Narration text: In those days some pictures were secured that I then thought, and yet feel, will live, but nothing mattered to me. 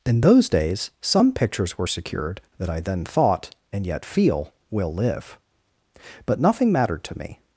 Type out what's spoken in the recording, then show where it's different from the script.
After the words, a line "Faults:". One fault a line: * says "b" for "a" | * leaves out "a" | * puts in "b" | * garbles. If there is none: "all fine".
In those days some pictures were secured that I then thought, and yet feel, will live, but nothing mattered to me.
Faults:
all fine